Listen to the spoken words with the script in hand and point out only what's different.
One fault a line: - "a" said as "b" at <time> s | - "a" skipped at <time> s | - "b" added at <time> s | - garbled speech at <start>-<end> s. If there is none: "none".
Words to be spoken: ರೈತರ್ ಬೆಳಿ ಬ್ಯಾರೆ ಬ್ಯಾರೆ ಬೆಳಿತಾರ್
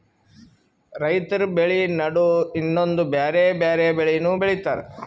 - "ನಡು ಇನ್ನೊಂದ್" added at 1.9 s
- "ಬೆಳಿನೂ" added at 3.9 s